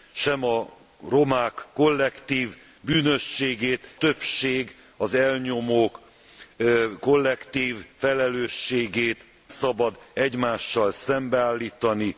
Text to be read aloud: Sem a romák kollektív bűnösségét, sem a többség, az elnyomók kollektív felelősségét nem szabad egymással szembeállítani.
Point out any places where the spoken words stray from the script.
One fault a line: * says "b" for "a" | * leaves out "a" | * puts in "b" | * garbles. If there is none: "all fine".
* leaves out "sem a"
* leaves out "nem"